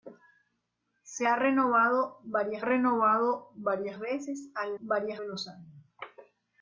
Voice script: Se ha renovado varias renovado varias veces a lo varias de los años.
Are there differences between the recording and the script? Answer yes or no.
no